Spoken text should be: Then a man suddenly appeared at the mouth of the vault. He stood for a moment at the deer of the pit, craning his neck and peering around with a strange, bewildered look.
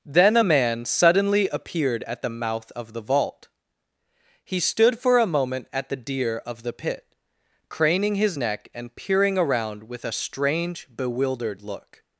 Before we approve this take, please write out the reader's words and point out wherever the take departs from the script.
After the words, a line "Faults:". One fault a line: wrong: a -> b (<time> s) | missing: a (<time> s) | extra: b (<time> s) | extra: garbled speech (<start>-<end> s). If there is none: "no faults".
Then a man suddenly appeared at the mouth of the vault. He stood for a moment at the deer of the pit, craning his neck and peering around with a strange, bewildered look.
Faults:
no faults